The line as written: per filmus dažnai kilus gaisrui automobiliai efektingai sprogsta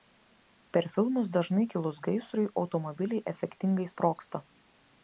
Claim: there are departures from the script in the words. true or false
false